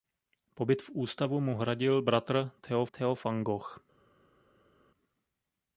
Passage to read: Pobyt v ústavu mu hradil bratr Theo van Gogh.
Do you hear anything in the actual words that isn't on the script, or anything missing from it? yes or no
yes